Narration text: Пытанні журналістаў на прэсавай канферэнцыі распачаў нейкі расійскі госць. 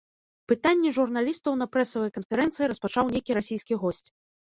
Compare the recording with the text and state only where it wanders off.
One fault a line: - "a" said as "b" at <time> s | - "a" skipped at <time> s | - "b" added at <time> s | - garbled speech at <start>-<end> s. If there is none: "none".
none